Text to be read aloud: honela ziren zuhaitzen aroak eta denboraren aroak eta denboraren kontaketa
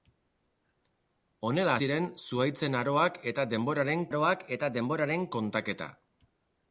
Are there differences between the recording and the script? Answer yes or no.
no